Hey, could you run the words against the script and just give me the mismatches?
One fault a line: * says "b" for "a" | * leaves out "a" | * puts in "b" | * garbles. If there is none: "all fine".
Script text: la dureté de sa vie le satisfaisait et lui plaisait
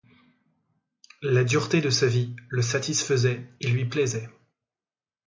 all fine